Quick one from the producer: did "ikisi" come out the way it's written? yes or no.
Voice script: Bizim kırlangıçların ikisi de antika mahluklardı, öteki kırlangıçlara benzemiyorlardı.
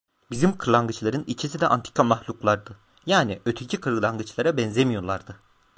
yes